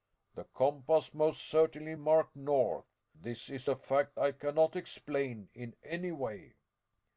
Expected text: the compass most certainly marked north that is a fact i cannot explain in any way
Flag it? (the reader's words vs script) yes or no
yes